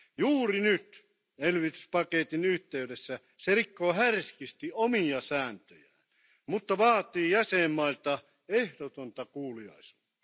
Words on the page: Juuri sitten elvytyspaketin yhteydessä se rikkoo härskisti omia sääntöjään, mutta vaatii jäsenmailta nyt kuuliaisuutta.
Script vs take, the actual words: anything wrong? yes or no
yes